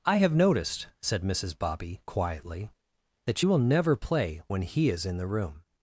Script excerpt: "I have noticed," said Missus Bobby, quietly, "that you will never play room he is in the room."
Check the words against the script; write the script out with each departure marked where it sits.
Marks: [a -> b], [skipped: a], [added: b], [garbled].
"I have noticed," said Missus Bobby, quietly, "that you will never play [room -> when] he is in the room."